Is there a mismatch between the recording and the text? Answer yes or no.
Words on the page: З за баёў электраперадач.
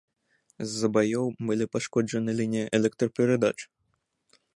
yes